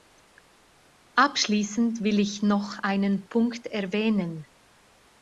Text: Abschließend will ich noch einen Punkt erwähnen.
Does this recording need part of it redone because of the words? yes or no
no